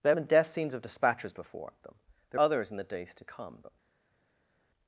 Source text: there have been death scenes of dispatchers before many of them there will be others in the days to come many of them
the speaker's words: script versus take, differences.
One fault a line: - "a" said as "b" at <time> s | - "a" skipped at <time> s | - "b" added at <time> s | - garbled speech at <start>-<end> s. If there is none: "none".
- "many of" skipped at 1.7 s
- "will be" skipped at 2.4 s
- "many of" skipped at 3.6 s